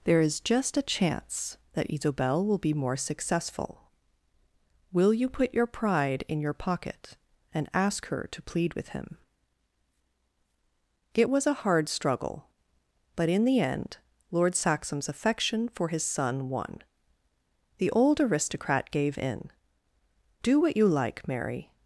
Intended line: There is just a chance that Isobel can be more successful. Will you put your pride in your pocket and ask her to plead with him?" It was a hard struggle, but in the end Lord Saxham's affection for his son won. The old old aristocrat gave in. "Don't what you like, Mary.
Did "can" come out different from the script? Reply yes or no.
yes